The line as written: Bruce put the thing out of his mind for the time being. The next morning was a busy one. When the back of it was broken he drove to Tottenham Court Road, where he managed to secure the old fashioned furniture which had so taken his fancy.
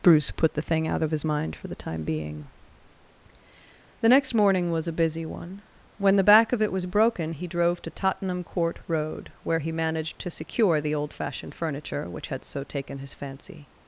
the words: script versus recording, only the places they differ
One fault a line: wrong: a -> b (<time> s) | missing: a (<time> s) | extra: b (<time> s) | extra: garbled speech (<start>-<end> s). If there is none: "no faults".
no faults